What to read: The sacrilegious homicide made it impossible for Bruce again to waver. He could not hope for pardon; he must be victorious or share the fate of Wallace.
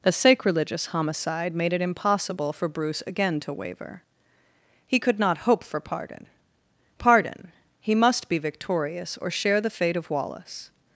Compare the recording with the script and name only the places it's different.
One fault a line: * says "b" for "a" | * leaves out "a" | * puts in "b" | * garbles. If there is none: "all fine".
* puts in "pardon"